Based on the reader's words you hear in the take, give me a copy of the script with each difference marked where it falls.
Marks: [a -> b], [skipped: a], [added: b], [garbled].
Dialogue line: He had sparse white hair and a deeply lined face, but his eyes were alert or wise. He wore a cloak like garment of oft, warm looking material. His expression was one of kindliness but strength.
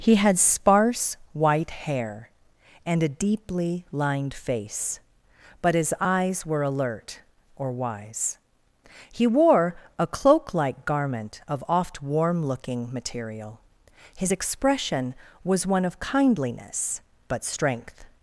He had sparse white hair and a deeply lined face, but his eyes were alert or wise. He wore a cloak like garment of oft, warm looking material. His expression was one of kindliness but strength.